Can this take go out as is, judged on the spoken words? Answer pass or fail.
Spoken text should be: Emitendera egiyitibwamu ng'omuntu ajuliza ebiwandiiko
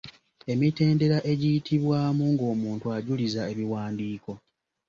pass